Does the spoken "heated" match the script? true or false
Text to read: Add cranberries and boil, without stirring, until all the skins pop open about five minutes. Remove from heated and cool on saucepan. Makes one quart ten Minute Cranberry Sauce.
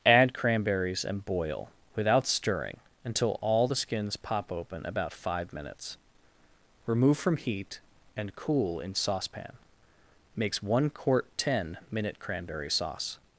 false